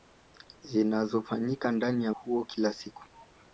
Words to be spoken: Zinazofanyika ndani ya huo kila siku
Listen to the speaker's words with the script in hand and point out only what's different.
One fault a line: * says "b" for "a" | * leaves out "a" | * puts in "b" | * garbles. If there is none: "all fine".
all fine